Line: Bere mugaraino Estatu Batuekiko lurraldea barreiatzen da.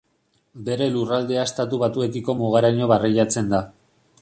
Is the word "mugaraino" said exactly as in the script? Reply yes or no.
no